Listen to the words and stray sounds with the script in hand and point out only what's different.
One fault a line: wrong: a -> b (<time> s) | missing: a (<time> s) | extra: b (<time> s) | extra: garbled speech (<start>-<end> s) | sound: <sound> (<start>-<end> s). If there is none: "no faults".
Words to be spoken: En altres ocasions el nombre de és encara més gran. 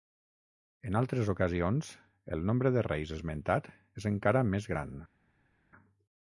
extra: reis esmentat (2.9 s)